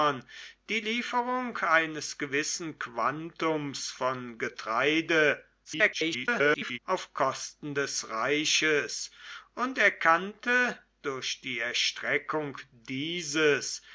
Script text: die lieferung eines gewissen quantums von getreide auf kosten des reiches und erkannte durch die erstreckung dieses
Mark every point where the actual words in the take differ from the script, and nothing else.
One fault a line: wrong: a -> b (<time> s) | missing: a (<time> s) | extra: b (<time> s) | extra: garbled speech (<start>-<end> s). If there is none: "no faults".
extra: garbled speech (5.6-6.8 s)